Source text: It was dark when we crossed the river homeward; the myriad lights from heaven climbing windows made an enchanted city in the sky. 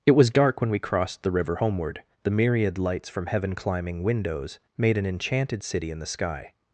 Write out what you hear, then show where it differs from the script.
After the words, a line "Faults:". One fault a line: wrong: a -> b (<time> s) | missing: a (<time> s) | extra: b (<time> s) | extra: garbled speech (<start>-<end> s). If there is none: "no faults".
It was dark when we crossed the river homeward; the myriad lights from heaven climbing windows made an enchanted city in the sky.
Faults:
no faults